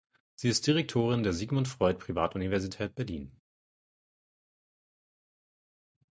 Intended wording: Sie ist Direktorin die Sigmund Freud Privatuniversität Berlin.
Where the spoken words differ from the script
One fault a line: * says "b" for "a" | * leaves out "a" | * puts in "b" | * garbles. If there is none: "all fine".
* says "der" for "die"